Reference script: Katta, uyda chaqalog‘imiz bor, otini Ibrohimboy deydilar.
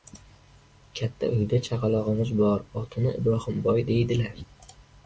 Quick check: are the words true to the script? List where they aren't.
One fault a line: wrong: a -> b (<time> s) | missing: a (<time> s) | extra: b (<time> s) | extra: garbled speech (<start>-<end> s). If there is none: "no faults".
no faults